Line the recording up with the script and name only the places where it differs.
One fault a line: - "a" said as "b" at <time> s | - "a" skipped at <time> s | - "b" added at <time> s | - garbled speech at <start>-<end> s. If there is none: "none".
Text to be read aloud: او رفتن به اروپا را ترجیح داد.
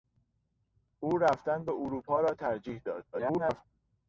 - garbled speech at 3.1-3.6 s